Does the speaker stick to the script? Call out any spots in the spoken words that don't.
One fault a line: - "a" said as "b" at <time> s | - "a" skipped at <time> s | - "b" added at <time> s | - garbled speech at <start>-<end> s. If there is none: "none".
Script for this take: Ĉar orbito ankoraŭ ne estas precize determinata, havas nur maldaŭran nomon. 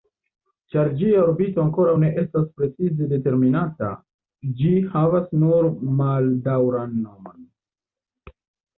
- "ĝia" added at 1.0 s
- "ĝi" added at 4.6 s